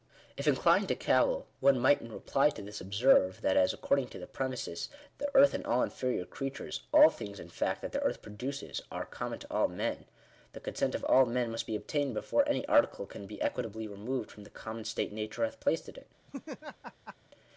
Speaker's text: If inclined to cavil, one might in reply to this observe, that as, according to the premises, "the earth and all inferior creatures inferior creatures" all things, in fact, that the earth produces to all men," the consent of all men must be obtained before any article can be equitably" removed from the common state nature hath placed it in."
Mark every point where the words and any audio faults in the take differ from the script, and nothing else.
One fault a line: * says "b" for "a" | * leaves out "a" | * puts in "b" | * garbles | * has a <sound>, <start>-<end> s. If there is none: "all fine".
* leaves out "inferior creatures"
* puts in "are common"
* has a laugh, 16.3-17.2 s